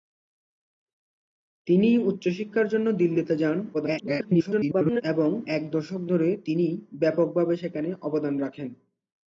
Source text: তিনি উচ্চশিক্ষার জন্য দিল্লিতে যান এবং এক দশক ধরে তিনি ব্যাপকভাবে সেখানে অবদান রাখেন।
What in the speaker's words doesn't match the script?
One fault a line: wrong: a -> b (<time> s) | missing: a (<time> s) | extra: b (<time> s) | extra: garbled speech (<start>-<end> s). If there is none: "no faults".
extra: garbled speech (3.7-5.0 s)